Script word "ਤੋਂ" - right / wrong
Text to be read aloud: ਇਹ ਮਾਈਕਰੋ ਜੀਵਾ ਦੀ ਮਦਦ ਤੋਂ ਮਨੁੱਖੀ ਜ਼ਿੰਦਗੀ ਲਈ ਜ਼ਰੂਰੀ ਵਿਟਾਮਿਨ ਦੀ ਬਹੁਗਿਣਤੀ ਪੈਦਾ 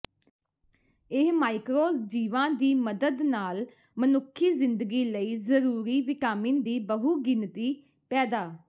wrong